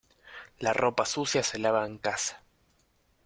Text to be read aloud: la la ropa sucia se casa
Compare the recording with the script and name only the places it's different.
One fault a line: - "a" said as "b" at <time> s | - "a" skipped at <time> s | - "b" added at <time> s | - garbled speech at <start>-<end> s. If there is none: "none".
- "la" skipped at 0.7 s
- "lava en" added at 1.6 s